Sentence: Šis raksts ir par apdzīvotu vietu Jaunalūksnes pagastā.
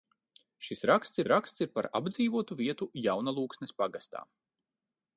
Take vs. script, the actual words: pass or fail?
fail